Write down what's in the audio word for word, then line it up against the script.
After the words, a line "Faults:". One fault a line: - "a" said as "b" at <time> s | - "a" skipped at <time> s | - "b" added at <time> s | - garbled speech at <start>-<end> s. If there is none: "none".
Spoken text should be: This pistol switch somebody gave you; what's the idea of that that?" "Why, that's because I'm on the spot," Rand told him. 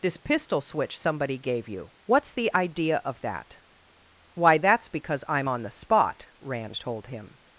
This pistol switch somebody gave you; what's the idea of that?" "Why, that's because I'm on the spot," Rand told him.
Faults:
- "that" skipped at 3.6 s